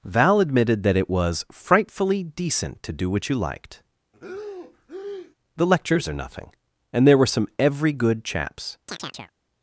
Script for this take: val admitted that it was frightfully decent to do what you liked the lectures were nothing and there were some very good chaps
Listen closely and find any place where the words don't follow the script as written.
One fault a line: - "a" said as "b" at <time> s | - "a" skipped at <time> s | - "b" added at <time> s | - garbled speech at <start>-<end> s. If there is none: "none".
- "were" said as "are" at 6.1 s
- "very" said as "every" at 7.6 s